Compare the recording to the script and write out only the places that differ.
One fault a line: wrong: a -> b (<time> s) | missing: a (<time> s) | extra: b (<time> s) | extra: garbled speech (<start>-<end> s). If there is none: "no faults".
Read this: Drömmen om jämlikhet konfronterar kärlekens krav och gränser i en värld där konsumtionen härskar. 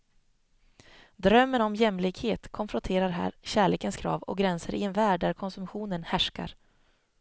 extra: här (3.1 s)